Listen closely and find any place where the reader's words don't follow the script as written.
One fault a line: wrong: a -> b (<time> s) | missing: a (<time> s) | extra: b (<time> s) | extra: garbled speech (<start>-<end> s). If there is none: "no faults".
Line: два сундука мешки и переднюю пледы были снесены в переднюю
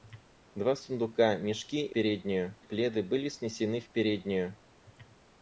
no faults